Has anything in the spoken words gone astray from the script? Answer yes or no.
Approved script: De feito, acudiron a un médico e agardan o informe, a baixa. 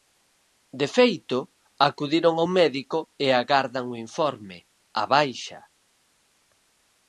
no